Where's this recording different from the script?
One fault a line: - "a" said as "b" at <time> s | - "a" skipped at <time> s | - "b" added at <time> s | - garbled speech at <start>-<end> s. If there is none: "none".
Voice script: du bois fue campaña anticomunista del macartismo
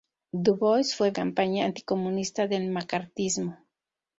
none